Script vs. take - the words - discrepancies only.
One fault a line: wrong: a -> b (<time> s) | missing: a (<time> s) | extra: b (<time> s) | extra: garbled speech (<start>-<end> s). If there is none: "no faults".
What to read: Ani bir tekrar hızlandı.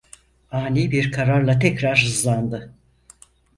extra: kararla (1.1 s)